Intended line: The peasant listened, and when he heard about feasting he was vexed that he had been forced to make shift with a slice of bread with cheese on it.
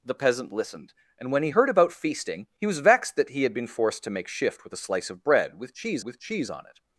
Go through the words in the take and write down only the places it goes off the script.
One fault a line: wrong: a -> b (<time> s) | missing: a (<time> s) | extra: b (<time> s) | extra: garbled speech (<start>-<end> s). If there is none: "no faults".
extra: with cheese (6.0 s)